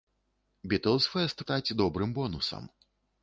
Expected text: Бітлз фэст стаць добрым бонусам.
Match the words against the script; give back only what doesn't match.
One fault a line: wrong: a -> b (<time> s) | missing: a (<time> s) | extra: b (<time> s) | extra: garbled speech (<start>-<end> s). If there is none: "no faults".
no faults